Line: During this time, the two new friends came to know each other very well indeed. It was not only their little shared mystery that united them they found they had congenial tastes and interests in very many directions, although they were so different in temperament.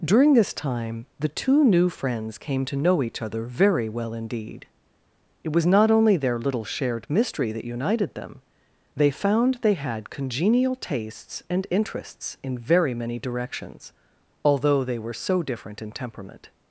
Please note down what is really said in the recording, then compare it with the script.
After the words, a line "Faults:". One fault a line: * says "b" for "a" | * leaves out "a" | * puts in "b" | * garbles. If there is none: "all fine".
During this time, the two new friends came to know each other very well indeed. It was not only their little shared mystery that united them they found they had congenial tastes and interests in very many directions, although they were so different in temperament.
Faults:
all fine